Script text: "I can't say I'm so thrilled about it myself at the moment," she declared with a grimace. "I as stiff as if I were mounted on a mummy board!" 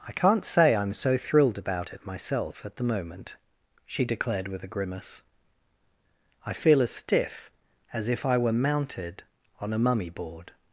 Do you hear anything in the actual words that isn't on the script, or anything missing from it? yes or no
yes